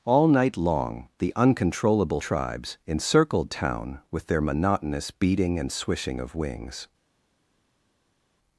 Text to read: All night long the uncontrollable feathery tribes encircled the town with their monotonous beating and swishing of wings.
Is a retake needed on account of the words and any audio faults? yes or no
yes